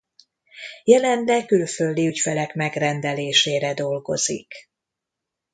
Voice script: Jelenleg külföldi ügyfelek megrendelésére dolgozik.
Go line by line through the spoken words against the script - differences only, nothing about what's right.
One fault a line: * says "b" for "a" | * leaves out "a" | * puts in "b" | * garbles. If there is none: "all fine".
all fine